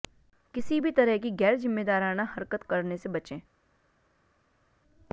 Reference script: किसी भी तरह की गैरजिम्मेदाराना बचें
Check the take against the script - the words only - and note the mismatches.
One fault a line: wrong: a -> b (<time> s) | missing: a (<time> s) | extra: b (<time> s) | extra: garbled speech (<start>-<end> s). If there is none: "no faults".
extra: हरकत करने से (2.3 s)